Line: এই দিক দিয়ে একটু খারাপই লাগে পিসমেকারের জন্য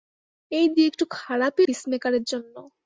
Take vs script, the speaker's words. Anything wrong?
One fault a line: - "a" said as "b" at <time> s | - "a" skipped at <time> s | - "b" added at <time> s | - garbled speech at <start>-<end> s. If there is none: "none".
- "দিক" skipped at 0.7 s
- "লাগে" skipped at 1.6 s